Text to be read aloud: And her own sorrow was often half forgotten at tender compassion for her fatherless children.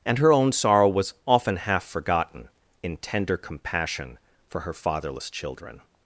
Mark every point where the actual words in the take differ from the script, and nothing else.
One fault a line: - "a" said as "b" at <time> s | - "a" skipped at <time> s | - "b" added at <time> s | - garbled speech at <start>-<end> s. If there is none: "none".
- "at" said as "in" at 2.8 s